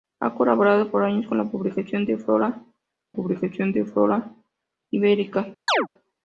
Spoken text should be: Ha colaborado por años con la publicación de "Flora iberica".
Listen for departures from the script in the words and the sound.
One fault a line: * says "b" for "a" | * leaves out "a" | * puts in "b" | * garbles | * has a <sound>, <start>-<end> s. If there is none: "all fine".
* puts in "publicación de Flora"
* has a chirp, 5.7-5.9 s